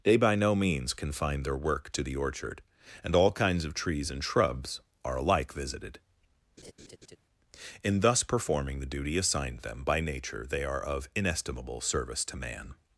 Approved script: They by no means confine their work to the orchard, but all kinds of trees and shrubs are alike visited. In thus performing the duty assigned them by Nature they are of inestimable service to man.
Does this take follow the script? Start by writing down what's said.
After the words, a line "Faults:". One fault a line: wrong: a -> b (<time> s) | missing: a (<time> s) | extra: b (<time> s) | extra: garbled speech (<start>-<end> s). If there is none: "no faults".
They by no means confine their work to the orchard, and all kinds of trees and shrubs are alike visited. In thus performing the duty assigned them by Nature they are of inestimable service to man.
Faults:
wrong: but -> and (3.0 s)